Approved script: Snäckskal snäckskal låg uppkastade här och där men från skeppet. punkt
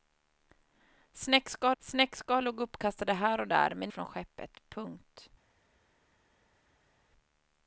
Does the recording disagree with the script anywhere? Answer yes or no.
no